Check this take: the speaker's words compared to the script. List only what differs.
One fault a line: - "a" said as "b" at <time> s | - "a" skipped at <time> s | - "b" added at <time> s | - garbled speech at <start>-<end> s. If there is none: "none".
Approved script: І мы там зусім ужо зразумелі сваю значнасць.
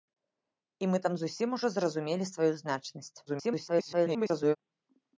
- garbled speech at 3.3-4.6 s